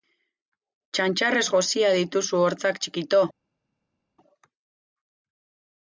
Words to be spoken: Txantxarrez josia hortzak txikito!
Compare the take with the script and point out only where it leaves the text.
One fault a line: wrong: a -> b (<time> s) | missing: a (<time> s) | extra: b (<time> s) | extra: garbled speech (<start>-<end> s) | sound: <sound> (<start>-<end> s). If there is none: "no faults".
extra: dituzu (2.0 s)